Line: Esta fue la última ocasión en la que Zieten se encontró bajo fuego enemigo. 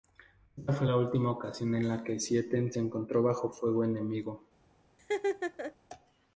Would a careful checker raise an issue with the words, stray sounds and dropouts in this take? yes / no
yes